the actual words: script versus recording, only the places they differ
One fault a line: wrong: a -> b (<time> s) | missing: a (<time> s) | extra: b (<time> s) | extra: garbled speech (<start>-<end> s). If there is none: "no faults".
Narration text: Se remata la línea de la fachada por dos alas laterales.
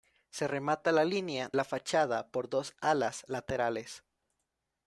missing: de (1.5 s)